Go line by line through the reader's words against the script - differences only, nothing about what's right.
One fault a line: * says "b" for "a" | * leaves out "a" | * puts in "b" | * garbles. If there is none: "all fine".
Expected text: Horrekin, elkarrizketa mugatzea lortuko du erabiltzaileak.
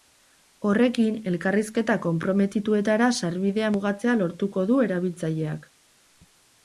* puts in "konprometituetara sarbidea"